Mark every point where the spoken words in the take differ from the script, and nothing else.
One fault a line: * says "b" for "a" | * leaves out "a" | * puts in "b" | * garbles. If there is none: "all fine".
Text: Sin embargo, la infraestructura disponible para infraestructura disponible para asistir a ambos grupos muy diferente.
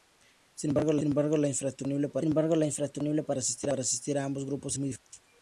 all fine